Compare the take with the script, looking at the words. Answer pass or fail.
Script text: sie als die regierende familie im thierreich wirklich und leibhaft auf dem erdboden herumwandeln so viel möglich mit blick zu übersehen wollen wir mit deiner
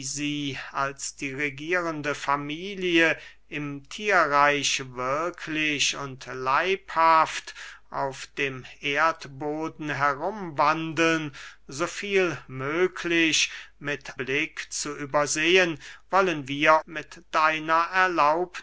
pass